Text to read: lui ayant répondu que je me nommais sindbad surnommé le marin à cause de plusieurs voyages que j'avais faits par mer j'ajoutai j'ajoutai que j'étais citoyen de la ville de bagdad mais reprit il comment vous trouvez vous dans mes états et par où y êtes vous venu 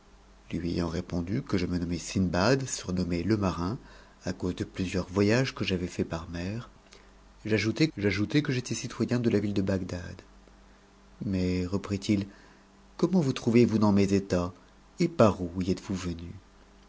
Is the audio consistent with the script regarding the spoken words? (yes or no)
yes